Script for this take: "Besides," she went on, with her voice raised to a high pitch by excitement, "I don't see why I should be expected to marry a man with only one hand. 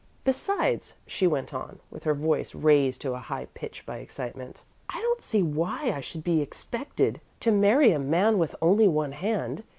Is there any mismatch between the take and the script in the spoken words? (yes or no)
no